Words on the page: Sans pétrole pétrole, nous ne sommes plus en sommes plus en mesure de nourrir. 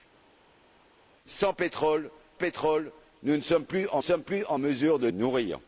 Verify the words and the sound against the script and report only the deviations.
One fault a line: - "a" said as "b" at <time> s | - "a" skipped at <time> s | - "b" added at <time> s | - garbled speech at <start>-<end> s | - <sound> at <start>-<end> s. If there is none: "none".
none